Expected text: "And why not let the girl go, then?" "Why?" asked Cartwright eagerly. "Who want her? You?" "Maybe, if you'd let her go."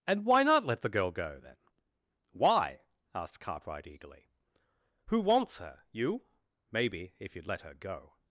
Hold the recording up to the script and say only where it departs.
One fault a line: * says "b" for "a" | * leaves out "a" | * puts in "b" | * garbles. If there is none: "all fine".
* says "wants" for "want"